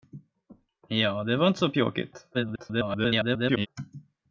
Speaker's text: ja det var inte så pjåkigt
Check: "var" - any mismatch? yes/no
no